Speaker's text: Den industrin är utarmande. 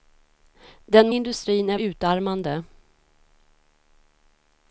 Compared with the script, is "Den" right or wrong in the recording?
right